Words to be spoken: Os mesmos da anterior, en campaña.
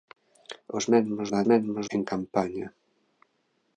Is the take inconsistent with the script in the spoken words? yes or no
yes